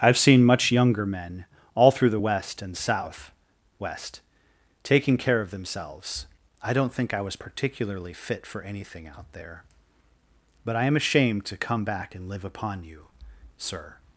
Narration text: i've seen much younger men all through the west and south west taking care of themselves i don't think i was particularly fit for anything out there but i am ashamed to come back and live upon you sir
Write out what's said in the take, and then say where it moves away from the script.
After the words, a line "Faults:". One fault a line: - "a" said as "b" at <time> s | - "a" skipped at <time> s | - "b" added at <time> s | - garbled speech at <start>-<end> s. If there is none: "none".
i've seen much younger men all through the west and south west taking care of themselves i don't think i was particularly fit for anything out there but i am ashamed to come back and live upon you sir
Faults:
none